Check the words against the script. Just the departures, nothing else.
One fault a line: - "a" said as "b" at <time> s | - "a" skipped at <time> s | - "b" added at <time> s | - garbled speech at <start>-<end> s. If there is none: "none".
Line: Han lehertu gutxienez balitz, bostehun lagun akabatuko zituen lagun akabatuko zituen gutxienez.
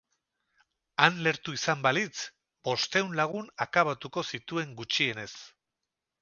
- "gutxienez" said as "izan" at 1.6 s
- "lagun akabatuko zituen" skipped at 4.8 s